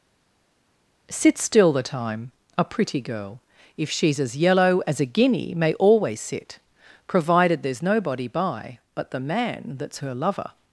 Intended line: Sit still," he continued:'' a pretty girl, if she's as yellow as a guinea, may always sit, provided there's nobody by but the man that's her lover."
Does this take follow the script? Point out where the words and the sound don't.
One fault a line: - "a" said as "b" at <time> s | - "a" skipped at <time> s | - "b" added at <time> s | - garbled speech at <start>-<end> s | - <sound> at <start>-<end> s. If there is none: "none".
- "he continued" said as "the time" at 1.7 s